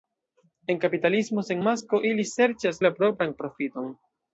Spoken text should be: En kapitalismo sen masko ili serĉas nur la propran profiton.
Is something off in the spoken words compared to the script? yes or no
yes